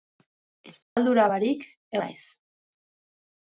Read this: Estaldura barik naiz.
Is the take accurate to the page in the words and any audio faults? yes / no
no